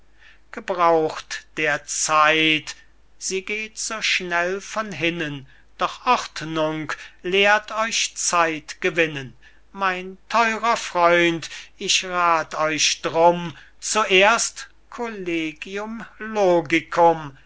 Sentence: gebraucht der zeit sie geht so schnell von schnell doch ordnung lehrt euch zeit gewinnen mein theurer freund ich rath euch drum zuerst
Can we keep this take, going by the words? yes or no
no